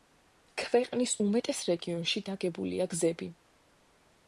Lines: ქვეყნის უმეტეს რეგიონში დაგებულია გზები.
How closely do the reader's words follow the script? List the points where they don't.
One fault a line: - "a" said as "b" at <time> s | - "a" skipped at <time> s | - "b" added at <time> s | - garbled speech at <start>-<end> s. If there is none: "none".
none